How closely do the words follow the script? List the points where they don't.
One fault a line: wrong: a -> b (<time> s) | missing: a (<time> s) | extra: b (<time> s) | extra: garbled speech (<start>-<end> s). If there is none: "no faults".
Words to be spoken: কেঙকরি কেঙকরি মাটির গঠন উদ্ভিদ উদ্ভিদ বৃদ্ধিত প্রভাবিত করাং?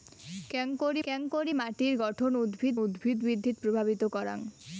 no faults